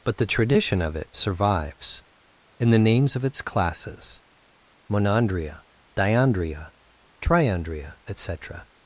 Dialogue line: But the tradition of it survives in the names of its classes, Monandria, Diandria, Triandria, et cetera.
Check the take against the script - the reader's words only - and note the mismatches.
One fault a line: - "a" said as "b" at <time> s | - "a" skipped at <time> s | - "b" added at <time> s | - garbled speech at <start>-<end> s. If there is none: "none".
none